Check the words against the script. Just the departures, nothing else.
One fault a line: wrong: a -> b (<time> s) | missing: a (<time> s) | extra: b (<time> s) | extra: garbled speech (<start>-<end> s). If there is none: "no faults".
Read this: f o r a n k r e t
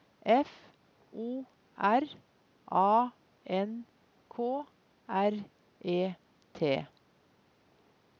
no faults